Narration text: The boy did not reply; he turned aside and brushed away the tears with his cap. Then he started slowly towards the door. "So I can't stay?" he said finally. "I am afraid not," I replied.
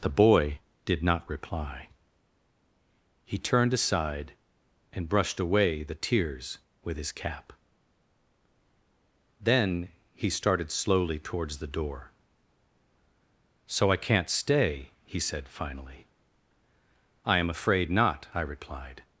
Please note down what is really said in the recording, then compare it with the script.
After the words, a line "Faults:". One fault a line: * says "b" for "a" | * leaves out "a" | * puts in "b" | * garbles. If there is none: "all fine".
The boy did not reply; he turned aside and brushed away the tears with his cap. Then he started slowly towards the door. "So I can't stay?" he said finally. "I am afraid not," I replied.
Faults:
all fine